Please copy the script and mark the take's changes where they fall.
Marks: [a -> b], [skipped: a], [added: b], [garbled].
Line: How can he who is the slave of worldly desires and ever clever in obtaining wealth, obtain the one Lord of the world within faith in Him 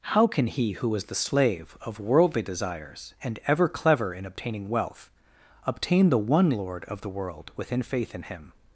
How can he who is the slave of worldly desires and ever clever in obtaining wealth, obtain the one Lord of the world within faith in Him